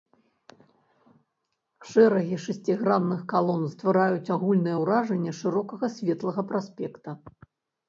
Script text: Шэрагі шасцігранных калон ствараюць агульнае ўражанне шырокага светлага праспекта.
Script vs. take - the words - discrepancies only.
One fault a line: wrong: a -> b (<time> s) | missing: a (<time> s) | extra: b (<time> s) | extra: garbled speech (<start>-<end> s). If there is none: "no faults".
no faults